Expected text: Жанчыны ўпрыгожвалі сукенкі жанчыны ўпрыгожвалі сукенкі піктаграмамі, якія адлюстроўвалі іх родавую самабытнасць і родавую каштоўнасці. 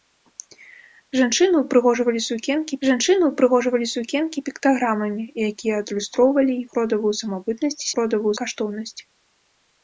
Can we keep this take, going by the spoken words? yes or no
yes